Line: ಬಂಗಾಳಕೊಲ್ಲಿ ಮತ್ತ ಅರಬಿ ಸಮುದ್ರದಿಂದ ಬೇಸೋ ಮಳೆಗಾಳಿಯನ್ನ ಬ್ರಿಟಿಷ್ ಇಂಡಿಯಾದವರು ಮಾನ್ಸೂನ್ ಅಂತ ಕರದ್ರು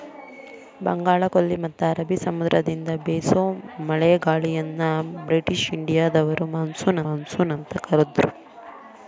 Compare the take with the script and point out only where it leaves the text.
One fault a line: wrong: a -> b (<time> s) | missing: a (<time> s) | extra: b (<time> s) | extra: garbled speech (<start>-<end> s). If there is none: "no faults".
extra: ಮಾನ್ಸೂನ್ (7.1 s)